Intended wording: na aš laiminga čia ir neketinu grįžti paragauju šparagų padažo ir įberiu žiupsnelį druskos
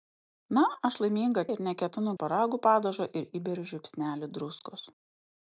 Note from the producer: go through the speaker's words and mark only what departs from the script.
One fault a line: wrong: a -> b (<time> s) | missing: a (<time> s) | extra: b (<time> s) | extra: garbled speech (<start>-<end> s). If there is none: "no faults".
missing: čia (1.4 s)
missing: grįžti paragauju (2.1 s)